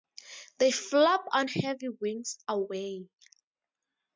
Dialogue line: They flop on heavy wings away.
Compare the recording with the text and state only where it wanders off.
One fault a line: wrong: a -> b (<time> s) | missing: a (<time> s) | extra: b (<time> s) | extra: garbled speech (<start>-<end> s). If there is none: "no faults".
no faults